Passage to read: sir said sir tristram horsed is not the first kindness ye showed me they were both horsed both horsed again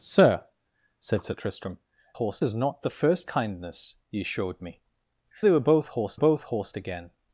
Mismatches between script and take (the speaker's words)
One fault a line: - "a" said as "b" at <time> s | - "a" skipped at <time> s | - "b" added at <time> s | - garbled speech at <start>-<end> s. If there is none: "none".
none